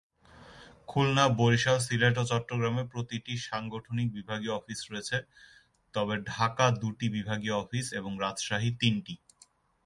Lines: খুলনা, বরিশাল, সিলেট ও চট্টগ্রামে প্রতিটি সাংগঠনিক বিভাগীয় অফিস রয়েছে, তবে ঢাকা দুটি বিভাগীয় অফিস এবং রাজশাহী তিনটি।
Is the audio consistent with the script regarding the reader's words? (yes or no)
yes